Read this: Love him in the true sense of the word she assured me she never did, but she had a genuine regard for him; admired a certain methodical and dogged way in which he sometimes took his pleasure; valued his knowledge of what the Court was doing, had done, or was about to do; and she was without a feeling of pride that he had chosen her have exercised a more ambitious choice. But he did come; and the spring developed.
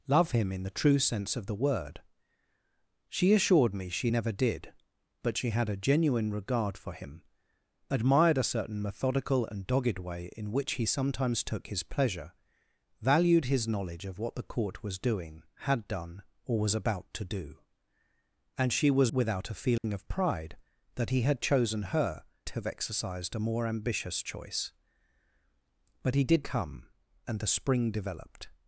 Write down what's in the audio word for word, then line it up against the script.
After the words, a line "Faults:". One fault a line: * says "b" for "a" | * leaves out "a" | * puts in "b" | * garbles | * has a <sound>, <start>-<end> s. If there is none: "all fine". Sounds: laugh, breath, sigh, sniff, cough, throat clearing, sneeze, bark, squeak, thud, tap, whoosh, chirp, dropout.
Love him in the true sense of the word she assured me she never did, but she had a genuine regard for him; admired a certain methodical and dogged way in which he sometimes took his pleasure; valued his knowledge of what the Court was doing, had done, or was about to do; and she was without a feeling of pride that he had chosen her have exercised a more ambitious choice. But he did come; and the spring developed.
Faults:
* has a dropout, 19.8-19.8 s